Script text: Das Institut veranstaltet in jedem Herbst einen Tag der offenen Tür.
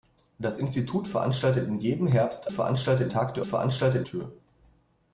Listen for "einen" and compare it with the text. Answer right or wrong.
wrong